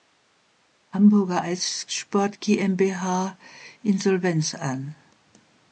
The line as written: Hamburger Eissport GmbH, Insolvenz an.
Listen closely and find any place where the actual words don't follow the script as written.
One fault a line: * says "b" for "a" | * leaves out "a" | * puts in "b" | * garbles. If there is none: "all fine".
all fine